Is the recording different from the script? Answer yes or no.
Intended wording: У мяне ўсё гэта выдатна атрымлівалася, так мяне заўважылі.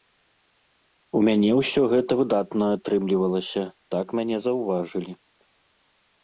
no